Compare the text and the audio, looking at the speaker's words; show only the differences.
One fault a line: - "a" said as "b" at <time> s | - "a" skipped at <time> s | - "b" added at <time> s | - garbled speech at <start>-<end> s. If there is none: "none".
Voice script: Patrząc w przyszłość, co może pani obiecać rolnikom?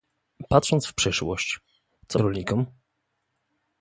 - "może pani obiecać" skipped at 2.2 s